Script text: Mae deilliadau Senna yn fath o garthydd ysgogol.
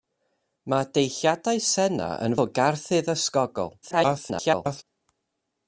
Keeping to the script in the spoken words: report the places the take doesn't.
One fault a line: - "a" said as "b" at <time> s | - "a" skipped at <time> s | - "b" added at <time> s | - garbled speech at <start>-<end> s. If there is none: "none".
- "fath" skipped at 2.4 s
- garbled speech at 3.8-4.8 s